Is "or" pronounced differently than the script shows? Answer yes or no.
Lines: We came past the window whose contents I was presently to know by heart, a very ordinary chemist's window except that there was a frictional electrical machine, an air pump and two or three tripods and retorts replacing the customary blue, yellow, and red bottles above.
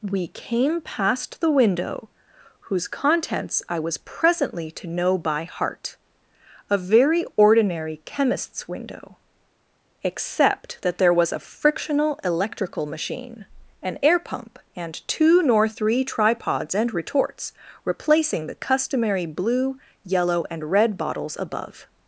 yes